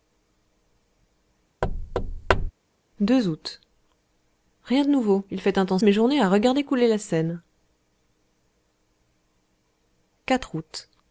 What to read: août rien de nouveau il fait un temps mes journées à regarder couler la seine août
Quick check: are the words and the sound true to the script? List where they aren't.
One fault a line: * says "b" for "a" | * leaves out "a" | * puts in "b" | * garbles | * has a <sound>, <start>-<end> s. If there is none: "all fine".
* has a thud, 1.6-2.5 s